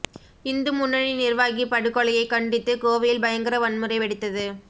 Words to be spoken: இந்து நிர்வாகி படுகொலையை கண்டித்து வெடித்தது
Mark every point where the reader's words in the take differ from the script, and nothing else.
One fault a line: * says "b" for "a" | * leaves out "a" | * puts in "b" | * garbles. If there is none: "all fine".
* puts in "முன்னணி"
* puts in "கோவையில் பயங்கர வன்முறை"